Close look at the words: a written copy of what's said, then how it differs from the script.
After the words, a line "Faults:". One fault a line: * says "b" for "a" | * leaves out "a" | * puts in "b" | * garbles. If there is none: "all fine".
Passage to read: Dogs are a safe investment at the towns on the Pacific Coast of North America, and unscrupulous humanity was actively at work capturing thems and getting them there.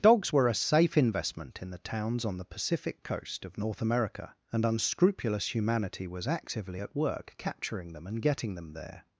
Dogs were a safe investment in the towns on the Pacific Coast of North America, and unscrupulous humanity was actively at work capturing them and getting them there.
Faults:
* says "were" for "are"
* says "in" for "at"
* says "them" for "thems"